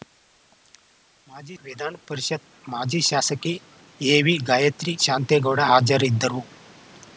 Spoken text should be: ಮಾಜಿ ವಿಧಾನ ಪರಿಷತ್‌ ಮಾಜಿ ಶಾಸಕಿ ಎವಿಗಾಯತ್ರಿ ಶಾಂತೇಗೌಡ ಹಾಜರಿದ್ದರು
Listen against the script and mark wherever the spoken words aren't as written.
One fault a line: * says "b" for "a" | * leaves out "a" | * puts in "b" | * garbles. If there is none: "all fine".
all fine